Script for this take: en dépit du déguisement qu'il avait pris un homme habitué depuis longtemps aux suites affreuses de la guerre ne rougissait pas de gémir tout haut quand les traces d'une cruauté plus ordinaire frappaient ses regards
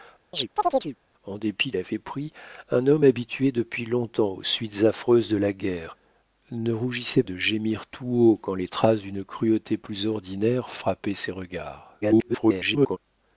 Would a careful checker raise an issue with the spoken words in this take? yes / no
yes